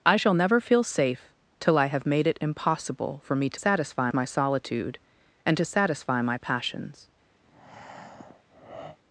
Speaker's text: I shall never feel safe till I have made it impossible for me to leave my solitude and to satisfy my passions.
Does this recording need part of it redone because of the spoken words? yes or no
yes